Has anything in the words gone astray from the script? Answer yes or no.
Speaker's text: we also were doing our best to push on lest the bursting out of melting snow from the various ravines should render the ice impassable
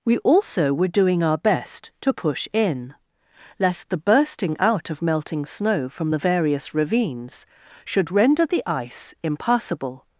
yes